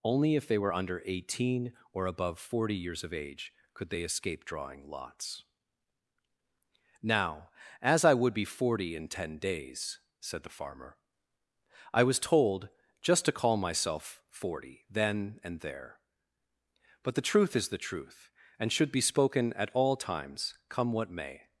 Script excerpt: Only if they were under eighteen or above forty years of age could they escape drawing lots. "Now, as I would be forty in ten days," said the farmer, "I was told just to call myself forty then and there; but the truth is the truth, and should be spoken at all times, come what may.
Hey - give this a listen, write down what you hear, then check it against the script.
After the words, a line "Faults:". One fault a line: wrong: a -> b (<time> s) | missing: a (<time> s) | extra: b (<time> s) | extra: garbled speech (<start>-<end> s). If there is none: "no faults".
Only if they were under eighteen or above forty years of age could they escape drawing lots. "Now, as I would be forty in ten days," said the farmer, "I was told just to call myself forty then and there; but the truth is the truth, and should be spoken at all times, come what may.
Faults:
no faults